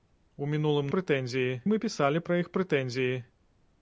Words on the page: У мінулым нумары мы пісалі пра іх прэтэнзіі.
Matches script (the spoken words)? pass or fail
fail